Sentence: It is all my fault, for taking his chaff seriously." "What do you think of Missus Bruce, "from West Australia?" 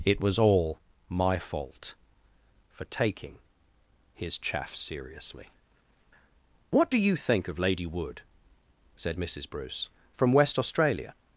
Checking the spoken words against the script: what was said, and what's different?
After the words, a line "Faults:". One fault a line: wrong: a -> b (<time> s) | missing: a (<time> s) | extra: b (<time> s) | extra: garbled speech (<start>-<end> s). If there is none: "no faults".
It was all my fault, for taking his chaff seriously." "What do you think of Lady Wood?" said Missus Bruce, "from West Australia?"
Faults:
wrong: is -> was (0.2 s)
extra: Lady Wood said (7.6 s)